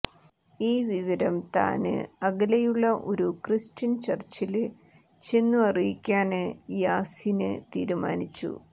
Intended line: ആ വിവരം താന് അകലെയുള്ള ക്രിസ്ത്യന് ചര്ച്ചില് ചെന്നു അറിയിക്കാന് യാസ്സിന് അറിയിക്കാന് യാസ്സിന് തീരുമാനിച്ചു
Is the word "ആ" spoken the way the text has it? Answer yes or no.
no